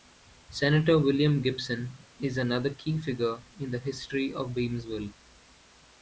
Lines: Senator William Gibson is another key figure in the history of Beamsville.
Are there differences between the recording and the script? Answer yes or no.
no